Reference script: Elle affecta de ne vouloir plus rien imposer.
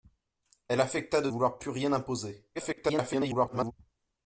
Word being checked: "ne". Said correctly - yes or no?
no